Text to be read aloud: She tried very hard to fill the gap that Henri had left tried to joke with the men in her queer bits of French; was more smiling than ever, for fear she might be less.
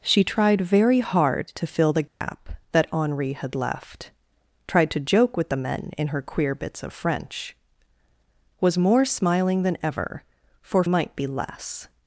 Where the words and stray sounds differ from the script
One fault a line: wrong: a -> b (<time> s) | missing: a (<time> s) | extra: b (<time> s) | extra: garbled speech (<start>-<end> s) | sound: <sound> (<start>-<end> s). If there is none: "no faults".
sound: dropout (2.1-2.2 s)
missing: fear she (10.8 s)